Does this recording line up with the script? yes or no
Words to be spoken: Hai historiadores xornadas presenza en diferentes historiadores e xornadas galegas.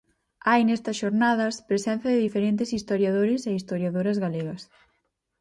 no